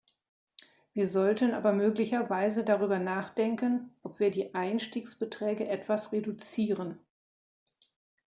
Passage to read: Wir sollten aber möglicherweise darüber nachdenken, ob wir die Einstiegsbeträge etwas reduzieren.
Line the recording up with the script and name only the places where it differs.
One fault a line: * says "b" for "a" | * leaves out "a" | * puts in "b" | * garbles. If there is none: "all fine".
all fine